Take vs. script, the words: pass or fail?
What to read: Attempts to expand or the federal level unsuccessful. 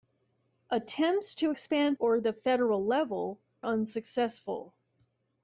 pass